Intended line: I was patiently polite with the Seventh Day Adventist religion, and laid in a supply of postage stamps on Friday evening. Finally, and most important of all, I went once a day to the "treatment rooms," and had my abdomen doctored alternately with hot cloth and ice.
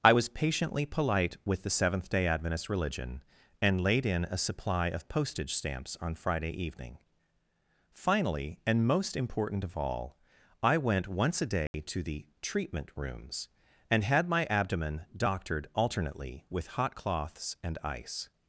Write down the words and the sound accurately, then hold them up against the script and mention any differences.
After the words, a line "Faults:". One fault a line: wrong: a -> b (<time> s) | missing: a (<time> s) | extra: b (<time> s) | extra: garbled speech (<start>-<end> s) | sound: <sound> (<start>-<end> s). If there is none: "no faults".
I was patiently polite with the Seventh Day Adventist religion, and laid in a supply of postage stamps on Friday evening. Finally, and most important of all, I went once a day to the "treatment rooms," and had my abdomen doctored alternately with hot cloths and ice.
Faults:
sound: dropout (11.7-11.7 s)
wrong: cloth -> cloths (16.9 s)